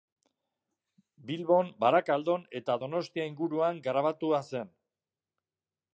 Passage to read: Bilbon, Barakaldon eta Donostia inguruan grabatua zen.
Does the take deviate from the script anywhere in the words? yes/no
no